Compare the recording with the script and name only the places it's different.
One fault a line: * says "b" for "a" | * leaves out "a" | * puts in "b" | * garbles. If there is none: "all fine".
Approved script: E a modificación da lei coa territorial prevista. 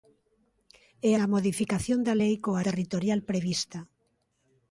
all fine